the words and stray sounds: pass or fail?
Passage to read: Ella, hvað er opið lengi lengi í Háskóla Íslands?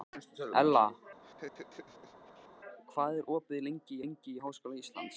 fail